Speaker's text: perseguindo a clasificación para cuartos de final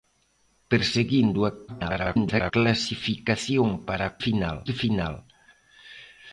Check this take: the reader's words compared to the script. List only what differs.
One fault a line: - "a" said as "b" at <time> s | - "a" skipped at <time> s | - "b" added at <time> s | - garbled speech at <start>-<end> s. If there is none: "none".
- garbled speech at 1.7-2.5 s
- "cuartos" said as "final" at 4.2 s